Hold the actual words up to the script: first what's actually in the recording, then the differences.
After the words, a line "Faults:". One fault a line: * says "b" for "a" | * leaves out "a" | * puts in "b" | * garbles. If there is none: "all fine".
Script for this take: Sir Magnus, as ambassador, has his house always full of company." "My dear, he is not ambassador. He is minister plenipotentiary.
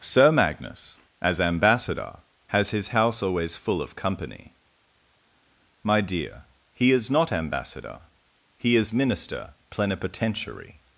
Sir Magnus, as ambassador, has his house always full of company." "My dear, he is not ambassador. He is minister plenipotentiary.
Faults:
all fine